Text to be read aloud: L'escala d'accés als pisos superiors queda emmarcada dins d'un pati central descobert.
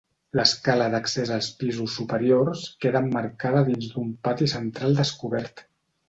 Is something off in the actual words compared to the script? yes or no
no